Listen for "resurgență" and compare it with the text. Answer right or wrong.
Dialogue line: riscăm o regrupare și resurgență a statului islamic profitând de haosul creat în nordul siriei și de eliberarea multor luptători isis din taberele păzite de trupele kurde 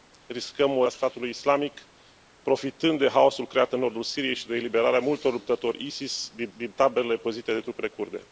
wrong